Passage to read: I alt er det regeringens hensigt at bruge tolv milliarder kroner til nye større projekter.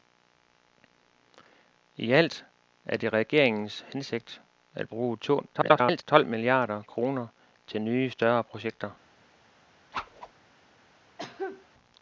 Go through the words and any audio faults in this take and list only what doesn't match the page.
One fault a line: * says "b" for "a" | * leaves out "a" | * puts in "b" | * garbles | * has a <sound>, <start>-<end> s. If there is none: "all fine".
* garbles
* has a whoosh, 9.9-10.3 s
* has a cough, 11.2-11.7 s